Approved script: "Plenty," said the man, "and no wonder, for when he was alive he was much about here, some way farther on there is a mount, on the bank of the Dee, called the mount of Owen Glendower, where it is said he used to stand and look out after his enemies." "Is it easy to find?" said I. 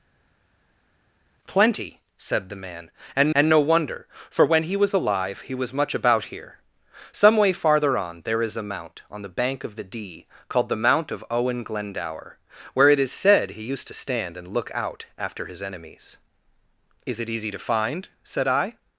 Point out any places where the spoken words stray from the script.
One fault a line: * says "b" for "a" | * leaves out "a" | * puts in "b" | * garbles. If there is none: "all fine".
* puts in "and"